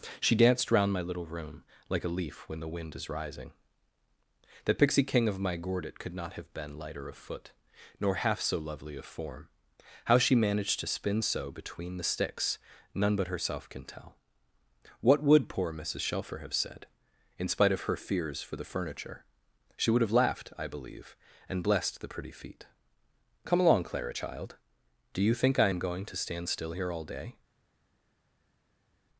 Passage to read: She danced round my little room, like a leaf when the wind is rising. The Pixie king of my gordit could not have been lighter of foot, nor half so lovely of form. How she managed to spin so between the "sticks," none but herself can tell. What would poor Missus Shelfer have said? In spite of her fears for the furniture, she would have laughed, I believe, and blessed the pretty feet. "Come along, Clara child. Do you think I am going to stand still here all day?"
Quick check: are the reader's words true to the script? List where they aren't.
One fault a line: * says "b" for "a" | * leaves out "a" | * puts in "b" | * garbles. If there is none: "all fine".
all fine